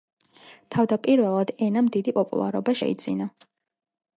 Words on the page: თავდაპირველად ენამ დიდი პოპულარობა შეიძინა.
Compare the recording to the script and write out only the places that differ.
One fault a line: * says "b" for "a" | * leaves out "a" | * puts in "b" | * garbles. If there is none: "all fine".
all fine